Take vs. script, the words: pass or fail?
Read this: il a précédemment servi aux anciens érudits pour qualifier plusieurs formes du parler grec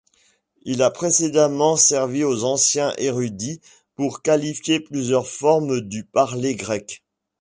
pass